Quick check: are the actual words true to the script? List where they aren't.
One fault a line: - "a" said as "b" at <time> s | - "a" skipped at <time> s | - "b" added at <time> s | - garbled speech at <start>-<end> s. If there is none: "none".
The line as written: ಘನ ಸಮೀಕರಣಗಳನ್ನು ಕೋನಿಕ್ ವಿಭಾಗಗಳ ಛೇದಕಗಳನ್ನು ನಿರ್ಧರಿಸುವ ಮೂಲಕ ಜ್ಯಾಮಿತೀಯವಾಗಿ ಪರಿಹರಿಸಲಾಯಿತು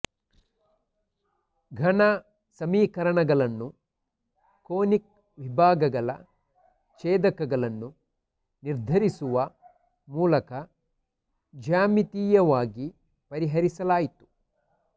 none